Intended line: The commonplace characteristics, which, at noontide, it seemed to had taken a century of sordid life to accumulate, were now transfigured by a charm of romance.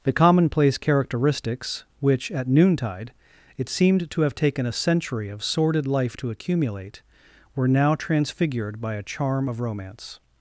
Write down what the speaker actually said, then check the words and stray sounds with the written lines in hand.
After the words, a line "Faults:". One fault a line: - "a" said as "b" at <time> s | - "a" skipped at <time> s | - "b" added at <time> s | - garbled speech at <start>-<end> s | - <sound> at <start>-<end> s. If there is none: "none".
The commonplace characteristics, which, at noontide, it seemed to have taken a century of sordid life to accumulate, were now transfigured by a charm of romance.
Faults:
- "had" said as "have" at 4.2 s